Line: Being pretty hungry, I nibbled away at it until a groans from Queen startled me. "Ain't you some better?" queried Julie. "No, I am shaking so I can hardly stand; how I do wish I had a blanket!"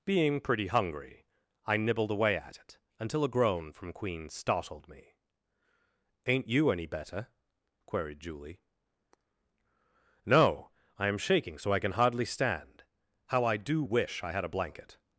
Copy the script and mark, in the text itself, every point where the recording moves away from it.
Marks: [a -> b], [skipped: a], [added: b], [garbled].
Being pretty hungry, I nibbled away at it until a [groans -> groan] from Queen startled me. "Ain't you [some -> any] better?" queried Julie. "No, I am shaking so I can hardly stand; how I do wish I had a blanket!"